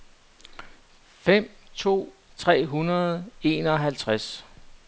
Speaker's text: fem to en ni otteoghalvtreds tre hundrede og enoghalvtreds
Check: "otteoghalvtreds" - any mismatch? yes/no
yes